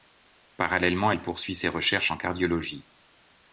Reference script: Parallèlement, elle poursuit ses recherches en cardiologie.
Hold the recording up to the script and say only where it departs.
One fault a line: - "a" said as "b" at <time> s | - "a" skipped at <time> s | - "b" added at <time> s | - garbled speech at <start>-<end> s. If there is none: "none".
none